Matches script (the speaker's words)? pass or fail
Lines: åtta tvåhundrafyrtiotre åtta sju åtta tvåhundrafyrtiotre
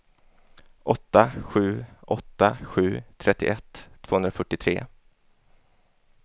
fail